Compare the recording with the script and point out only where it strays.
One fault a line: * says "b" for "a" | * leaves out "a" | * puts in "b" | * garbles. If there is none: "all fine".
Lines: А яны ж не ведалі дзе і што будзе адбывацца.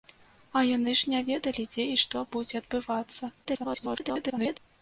* garbles